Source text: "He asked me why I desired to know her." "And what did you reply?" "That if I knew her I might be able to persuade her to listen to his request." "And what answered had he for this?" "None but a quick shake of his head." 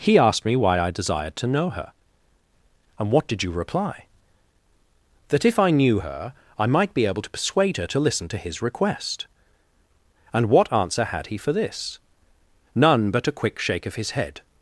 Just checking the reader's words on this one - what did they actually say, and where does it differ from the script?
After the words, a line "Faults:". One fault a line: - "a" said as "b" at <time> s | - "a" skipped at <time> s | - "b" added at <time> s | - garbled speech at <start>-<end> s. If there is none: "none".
"He asked me why I desired to know her." "And what did you reply?" "That if I knew her I might be able to persuade her to listen to his request." "And what answer had he for this?" "None but a quick shake of his head."
Faults:
- "answered" said as "answer" at 10.7 s